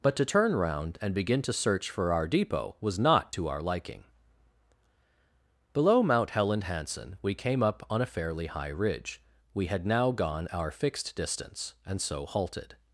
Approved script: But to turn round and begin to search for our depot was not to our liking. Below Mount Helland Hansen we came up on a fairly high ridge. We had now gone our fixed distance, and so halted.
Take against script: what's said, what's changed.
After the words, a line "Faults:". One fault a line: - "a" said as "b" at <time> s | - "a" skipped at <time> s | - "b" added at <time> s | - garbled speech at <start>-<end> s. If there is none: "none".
But to turn round and begin to search for our depot was not to our liking. Below Mount Helland Hansen we came up on a fairly high ridge. We had now gone our fixed distance, and so halted.
Faults:
none